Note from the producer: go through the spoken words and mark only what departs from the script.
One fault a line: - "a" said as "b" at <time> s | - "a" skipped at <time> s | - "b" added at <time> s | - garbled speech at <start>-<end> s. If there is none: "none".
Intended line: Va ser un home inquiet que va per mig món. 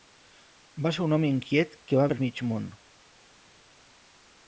none